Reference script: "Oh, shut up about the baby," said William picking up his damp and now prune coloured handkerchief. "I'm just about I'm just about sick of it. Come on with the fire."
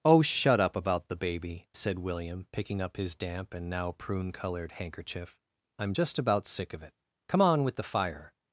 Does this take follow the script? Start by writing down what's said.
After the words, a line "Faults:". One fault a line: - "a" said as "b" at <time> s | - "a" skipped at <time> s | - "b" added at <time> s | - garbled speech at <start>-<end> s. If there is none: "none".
"Oh, shut up about the baby," said William picking up his damp and now prune coloured handkerchief. "I'm just about sick of it. Come on with the fire."
Faults:
- "I'm just about" skipped at 6.5 s